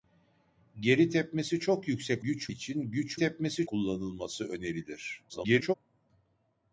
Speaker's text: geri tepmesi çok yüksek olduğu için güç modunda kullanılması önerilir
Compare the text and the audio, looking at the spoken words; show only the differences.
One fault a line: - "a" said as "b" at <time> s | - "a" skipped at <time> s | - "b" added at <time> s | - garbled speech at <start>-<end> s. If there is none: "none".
- "olduğu" said as "güç" at 2.2 s
- "modunda" said as "tepmesi" at 3.2 s
- garbled speech at 5.3-5.7 s